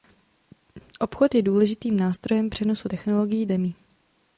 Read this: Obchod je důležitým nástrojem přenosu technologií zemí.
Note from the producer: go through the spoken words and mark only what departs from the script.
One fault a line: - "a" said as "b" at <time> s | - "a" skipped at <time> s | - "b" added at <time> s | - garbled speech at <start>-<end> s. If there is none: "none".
none